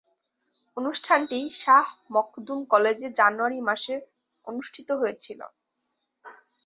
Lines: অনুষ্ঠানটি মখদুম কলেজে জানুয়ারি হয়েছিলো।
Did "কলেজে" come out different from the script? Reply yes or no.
no